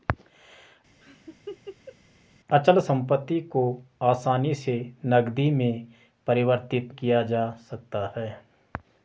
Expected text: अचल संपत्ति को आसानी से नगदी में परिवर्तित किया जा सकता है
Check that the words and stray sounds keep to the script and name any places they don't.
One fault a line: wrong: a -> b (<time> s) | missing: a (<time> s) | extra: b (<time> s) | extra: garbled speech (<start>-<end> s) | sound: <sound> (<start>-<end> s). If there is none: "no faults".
sound: laugh (1.0-2.0 s)